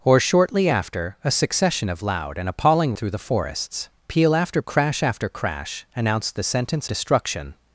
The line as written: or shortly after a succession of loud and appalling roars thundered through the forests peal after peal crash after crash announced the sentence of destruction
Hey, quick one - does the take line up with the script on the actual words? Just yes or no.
no